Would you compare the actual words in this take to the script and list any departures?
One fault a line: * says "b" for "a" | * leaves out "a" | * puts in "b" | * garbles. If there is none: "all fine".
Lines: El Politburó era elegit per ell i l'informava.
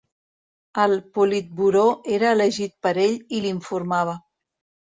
all fine